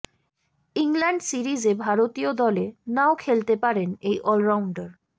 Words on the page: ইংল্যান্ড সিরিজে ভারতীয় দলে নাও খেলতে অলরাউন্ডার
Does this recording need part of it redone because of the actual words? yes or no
yes